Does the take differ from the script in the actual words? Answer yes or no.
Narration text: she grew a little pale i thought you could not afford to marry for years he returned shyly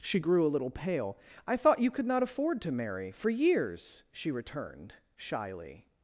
yes